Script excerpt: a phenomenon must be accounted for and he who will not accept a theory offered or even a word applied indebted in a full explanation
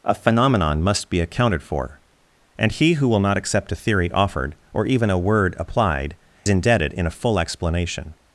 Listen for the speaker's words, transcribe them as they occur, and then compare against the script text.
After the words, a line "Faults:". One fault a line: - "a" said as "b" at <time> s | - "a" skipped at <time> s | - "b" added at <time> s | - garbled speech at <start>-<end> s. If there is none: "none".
a phenomenon must be accounted for and he who will not accept a theory offered or even a word applied indebted in a full explanation
Faults:
none